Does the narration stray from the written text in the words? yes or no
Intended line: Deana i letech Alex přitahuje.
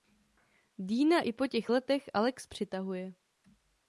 yes